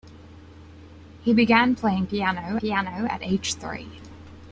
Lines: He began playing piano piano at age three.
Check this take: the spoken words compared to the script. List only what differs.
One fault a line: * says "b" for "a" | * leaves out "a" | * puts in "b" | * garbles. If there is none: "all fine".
all fine